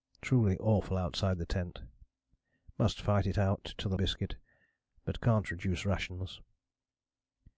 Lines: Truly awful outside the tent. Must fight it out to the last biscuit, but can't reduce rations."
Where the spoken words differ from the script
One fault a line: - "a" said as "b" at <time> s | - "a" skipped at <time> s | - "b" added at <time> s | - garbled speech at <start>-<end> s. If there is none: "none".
- "last" skipped at 4.0 s